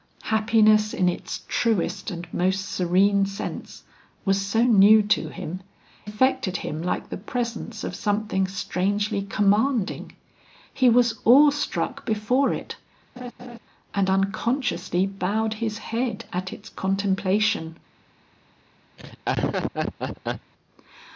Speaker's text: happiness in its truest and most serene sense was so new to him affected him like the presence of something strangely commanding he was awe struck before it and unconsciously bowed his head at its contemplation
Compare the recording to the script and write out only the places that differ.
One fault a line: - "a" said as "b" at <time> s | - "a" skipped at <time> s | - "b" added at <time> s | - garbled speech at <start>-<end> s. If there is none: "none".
none